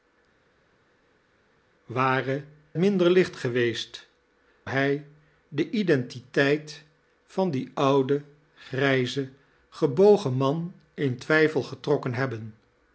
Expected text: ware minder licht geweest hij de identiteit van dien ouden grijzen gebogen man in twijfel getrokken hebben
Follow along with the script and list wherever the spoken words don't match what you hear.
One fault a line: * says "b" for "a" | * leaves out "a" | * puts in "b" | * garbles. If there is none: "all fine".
all fine